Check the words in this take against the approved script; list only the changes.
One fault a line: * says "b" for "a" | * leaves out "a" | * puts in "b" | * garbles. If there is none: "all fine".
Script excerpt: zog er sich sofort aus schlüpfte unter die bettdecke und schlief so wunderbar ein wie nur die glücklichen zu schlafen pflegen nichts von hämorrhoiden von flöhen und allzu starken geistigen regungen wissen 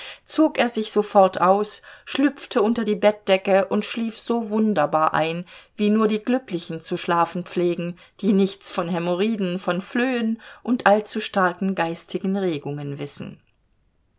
* puts in "die"